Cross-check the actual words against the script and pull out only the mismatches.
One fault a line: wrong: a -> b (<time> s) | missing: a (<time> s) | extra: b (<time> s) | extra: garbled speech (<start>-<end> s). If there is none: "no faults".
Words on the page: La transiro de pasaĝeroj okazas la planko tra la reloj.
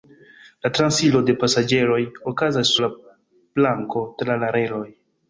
no faults